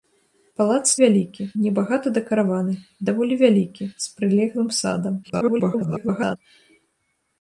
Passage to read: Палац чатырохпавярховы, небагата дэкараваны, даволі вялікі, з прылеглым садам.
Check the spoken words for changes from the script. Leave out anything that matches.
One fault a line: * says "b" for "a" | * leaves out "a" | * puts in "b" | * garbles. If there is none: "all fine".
* says "вялікі" for "чатырохпавярховы"
* garbles